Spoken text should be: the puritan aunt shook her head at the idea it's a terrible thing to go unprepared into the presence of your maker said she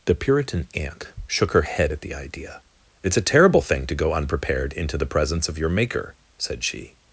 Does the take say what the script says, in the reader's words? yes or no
yes